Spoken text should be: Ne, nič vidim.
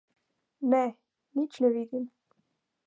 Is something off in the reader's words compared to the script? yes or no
yes